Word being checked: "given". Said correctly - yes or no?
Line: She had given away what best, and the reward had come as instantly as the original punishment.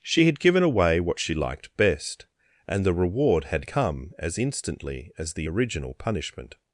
yes